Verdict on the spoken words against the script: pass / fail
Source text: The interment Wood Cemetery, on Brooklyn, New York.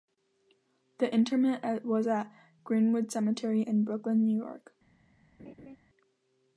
fail